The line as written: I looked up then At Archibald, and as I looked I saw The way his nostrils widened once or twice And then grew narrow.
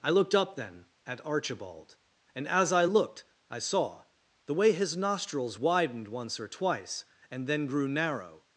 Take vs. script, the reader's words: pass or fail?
pass